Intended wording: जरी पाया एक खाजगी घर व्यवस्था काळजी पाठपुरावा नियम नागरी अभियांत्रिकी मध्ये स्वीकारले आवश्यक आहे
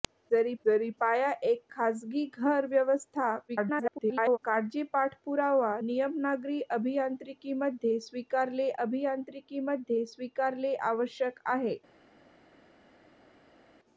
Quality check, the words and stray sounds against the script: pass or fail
fail